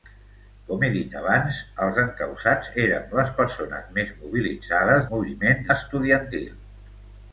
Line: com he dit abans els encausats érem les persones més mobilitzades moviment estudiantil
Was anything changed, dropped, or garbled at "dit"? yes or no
no